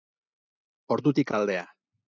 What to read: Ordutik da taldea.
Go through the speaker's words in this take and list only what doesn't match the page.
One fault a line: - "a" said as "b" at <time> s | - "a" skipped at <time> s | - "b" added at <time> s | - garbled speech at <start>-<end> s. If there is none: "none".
none